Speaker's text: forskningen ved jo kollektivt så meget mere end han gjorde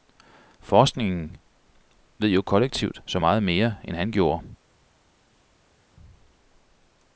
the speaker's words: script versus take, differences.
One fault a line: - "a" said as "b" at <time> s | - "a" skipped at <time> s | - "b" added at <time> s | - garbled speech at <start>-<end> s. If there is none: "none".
none